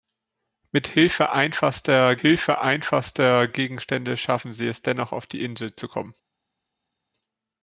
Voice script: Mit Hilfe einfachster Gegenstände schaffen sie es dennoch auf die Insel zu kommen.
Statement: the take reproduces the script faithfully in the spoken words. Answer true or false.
false